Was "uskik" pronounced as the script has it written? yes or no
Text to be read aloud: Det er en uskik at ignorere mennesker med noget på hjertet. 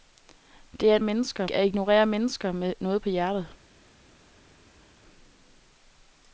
no